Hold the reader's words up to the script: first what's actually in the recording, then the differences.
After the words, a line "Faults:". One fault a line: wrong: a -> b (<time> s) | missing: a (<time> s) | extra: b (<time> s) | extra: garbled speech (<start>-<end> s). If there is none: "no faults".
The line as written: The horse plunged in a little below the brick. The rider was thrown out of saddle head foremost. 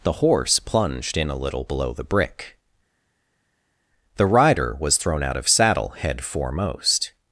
The horse plunged in a little below the brick. The rider was thrown out of saddle head foremost.
Faults:
no faults